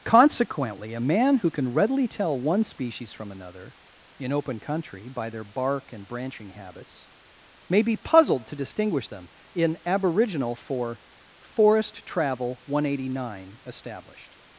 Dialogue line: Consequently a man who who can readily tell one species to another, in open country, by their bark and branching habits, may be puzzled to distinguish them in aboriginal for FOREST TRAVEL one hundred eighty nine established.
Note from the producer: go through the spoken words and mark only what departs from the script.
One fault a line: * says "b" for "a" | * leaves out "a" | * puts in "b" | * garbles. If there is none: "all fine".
* leaves out "who"
* says "from" for "to"